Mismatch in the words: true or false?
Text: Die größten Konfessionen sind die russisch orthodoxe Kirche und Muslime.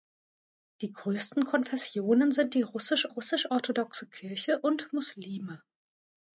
true